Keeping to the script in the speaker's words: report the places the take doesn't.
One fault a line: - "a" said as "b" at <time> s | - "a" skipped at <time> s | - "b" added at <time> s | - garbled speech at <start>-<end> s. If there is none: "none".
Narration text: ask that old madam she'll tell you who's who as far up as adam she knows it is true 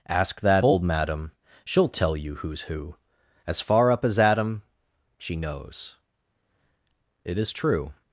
none